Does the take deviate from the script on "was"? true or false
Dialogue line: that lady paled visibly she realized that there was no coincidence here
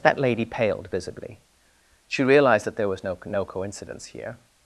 false